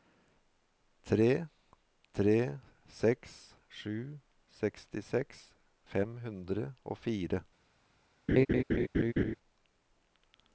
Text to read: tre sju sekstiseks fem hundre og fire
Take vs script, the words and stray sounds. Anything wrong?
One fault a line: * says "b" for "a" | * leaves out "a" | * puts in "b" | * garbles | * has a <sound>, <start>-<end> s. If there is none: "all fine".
* puts in "tre seks"
* has a laugh, 8.3-9.4 s